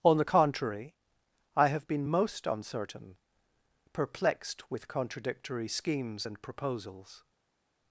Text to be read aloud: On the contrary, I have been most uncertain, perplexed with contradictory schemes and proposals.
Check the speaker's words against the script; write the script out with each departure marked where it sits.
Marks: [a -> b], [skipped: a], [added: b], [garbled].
On the contrary, I have been most uncertain, perplexed with contradictory schemes and proposals.